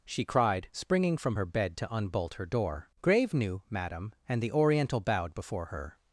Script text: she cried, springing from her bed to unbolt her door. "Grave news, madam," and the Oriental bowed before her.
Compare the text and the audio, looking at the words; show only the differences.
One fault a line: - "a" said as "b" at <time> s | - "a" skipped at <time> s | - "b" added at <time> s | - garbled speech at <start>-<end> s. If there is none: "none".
- "news" said as "new" at 3.3 s